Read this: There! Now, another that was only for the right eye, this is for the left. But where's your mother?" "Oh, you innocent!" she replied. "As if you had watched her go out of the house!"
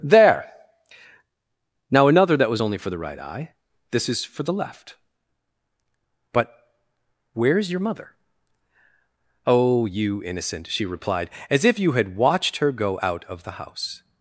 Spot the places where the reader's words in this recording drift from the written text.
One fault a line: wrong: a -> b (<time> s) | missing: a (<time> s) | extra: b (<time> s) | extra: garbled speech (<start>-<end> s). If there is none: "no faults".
no faults